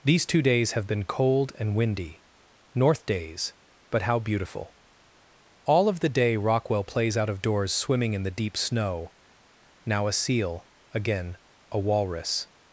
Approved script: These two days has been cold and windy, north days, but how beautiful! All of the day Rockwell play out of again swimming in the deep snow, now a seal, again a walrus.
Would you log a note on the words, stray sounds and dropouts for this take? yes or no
yes